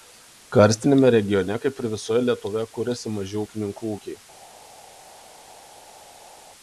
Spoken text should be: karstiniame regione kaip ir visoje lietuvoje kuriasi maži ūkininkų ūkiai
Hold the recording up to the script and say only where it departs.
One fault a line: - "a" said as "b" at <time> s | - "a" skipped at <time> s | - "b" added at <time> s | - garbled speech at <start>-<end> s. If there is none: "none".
none